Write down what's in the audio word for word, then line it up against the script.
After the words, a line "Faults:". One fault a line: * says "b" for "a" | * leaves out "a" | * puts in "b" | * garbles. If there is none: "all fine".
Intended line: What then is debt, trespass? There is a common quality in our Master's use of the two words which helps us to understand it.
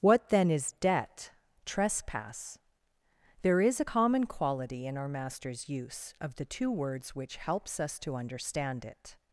What then is debt, trespass? There is a common quality in our Master's use of the two words which helps us to understand it.
Faults:
all fine